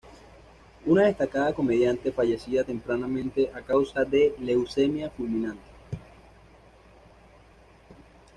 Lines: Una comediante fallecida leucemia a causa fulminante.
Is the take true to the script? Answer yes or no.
no